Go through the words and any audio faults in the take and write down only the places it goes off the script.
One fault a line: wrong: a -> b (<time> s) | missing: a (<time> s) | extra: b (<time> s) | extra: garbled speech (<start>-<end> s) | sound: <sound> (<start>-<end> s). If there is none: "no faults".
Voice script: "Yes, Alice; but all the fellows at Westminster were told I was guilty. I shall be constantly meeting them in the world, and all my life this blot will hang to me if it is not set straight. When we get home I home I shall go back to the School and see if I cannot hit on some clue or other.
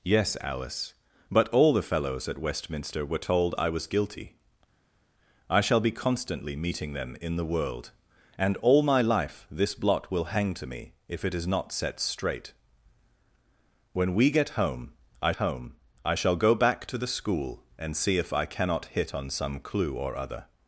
no faults